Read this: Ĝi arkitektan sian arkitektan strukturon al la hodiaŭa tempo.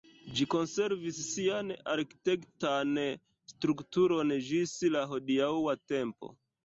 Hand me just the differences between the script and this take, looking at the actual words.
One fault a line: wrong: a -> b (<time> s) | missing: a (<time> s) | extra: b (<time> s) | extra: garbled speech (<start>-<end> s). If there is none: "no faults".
wrong: arkitektan -> konservis (0.5 s)
wrong: al -> ĝis (4.5 s)